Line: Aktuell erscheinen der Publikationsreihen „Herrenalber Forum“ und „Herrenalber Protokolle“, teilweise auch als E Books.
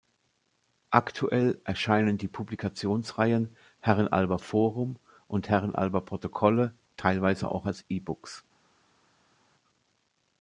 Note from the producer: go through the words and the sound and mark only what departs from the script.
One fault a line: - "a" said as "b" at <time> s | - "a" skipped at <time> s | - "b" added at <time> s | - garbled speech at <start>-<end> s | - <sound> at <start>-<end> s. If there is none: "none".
- "der" said as "die" at 2.2 s